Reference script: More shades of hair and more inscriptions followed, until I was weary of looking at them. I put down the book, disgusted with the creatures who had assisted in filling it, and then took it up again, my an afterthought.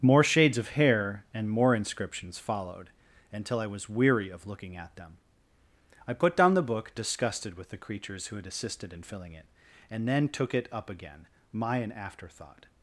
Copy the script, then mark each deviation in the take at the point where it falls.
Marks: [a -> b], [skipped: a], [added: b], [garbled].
More shades of hair and more inscriptions followed, until I was weary of looking at them. I put down the book, disgusted with the creatures who had assisted in filling it, and then took it up again, my an afterthought.